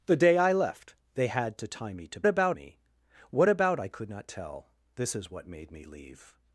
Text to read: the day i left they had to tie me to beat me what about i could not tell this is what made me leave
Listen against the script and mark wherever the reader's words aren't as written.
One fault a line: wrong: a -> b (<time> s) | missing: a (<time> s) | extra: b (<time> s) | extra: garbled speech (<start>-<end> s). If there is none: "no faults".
wrong: beat -> about (2.3 s)